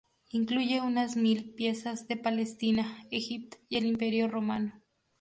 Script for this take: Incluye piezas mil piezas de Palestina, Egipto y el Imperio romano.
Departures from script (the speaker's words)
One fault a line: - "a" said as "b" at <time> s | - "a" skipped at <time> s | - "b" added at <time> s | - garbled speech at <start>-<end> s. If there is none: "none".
- "piezas" said as "unas" at 0.8 s